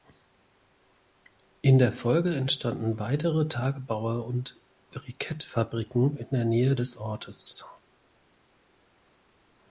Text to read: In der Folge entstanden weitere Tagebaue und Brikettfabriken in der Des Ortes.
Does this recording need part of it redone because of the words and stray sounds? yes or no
yes